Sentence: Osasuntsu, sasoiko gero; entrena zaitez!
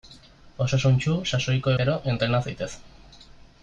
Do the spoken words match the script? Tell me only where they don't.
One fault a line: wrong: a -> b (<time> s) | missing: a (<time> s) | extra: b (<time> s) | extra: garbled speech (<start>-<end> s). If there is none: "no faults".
no faults